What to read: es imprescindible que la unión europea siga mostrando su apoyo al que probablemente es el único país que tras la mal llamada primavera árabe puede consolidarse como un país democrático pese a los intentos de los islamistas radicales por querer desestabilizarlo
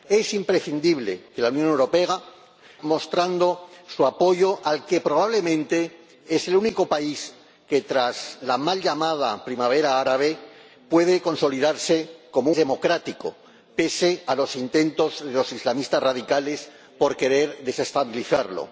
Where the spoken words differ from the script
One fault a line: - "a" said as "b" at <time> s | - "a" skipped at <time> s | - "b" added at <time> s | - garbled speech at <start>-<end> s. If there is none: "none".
- "siga" skipped at 2.2 s
- "un país" skipped at 12.5 s